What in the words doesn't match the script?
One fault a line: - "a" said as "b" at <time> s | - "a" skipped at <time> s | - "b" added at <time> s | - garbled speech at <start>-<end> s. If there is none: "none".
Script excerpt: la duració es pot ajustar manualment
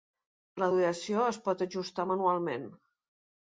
none